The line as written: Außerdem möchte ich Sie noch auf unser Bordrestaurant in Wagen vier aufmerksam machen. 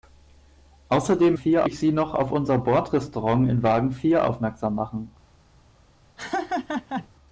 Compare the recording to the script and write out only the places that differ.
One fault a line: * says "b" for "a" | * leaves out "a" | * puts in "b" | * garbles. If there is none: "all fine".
* says "vier" for "möchte"